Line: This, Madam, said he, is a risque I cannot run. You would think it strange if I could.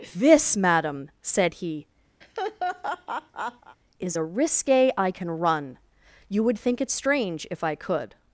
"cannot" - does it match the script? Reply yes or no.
no